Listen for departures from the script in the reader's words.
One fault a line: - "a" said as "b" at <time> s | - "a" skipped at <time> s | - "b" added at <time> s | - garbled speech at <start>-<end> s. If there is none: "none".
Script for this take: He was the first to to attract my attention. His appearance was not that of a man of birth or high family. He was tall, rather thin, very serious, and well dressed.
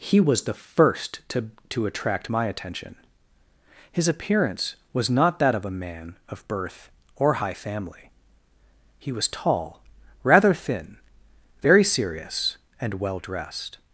none